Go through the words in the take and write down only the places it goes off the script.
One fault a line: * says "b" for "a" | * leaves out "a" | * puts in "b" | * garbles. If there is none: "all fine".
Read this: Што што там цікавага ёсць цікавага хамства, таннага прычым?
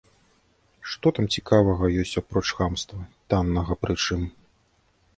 * leaves out "што"
* says "апроч" for "цікавага"